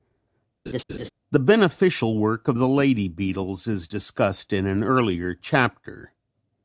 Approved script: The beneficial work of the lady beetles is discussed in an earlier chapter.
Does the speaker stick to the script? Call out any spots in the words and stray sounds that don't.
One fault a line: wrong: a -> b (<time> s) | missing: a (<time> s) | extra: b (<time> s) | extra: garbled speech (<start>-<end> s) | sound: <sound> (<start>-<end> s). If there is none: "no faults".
sound: laugh (0.7-1.1 s)